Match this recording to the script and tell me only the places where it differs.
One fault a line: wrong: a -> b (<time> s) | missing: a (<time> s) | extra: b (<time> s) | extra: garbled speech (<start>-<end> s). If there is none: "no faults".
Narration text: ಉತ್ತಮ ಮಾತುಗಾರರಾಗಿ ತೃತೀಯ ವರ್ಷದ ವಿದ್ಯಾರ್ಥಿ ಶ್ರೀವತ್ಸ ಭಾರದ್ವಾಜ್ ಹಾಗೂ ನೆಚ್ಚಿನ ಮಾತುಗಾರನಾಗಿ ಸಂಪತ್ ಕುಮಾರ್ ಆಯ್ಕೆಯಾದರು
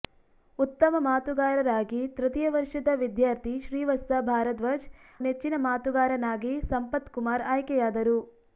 missing: ಹಾಗೂ (4.9 s)